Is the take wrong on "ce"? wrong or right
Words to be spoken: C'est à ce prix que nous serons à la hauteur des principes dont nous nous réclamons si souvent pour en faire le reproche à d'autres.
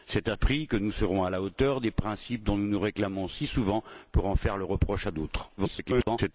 wrong